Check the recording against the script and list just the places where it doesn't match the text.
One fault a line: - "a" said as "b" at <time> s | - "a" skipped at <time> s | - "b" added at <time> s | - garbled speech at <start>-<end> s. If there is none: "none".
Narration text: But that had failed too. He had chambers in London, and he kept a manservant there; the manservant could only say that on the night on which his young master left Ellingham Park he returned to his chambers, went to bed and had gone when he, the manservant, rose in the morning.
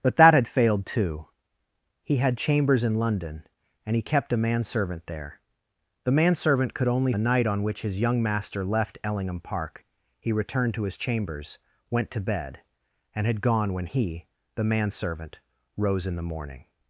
- "say that on" skipped at 7.1 s